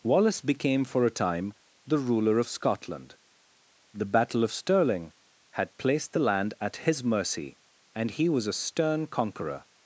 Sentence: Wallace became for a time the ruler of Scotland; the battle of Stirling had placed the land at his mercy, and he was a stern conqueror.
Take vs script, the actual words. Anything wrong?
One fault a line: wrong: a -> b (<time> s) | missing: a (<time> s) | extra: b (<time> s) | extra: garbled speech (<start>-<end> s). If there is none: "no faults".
no faults